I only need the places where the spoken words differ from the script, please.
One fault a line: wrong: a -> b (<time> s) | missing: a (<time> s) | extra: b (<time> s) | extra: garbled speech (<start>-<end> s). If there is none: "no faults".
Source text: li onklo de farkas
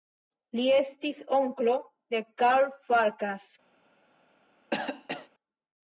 extra: estis (0.8 s)
extra: karl (2.4 s)